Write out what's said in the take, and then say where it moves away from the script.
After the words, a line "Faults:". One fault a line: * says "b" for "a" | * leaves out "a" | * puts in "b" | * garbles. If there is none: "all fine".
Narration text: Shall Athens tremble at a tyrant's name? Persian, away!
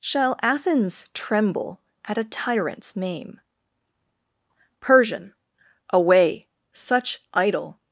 Shall Athens tremble at a tyrant's name? Persian, away! such idle
Faults:
* puts in "such idle"